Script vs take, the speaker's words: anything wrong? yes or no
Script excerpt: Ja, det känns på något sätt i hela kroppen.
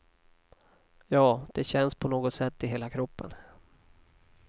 no